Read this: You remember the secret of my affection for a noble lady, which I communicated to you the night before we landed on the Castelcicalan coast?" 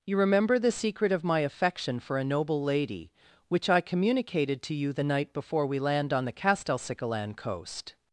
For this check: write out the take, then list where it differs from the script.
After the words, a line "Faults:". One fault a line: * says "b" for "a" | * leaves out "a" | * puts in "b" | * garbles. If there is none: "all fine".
You remember the secret of my affection for a noble lady, which I communicated to you the night before we land on the Castelcicalan coast?"
Faults:
* says "land" for "landed"